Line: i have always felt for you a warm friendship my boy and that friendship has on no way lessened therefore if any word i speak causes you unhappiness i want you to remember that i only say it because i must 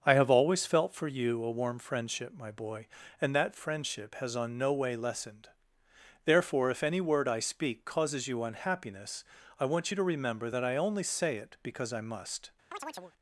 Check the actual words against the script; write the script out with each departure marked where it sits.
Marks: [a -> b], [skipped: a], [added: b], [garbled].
i have always felt for you a warm friendship my boy and that friendship has on no way lessened therefore if any word i speak causes you unhappiness i want you to remember that i only say it because i must